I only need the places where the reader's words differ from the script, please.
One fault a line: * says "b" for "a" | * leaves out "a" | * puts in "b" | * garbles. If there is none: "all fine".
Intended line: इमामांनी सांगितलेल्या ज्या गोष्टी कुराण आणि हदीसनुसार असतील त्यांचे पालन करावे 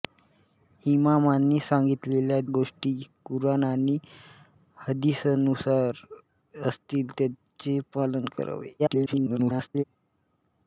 * leaves out "ज्या"
* garbles